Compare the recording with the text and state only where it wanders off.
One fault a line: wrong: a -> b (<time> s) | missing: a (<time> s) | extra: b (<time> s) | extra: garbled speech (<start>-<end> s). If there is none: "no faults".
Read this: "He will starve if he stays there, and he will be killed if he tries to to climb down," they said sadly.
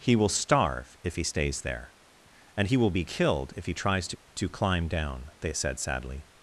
no faults